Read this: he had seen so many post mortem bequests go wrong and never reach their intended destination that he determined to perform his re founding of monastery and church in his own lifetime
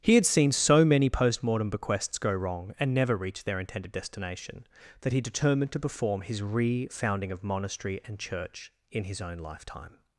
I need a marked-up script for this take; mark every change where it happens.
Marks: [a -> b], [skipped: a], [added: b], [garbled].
he had seen so many post mortem bequests go wrong and never reach their intended destination that he determined to perform his re founding of monastery and church in his own lifetime